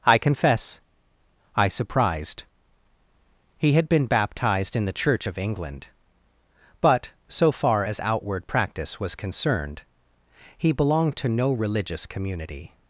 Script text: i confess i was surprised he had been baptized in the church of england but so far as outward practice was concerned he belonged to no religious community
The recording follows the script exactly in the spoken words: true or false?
false